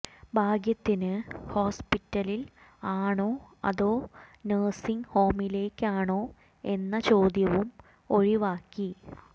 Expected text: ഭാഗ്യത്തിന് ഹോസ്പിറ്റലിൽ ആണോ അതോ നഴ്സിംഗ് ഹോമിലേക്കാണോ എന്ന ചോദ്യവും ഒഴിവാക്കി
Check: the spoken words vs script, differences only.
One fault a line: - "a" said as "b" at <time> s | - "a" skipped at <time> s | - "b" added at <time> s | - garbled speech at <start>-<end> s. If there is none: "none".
none